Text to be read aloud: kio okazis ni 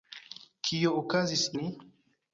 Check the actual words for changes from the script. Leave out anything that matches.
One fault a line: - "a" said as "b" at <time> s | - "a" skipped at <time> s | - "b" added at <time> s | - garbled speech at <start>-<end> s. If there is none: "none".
none